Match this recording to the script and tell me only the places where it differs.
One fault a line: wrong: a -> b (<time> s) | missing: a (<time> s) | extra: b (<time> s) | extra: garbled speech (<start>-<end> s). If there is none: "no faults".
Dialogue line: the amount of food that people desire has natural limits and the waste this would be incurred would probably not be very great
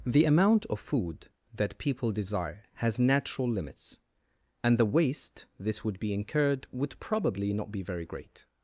no faults